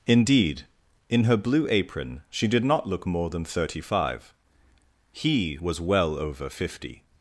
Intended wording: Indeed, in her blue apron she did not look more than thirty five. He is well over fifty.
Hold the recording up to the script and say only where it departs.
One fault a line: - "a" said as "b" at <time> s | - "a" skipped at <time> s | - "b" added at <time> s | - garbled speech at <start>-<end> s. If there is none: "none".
- "is" said as "was" at 5.6 s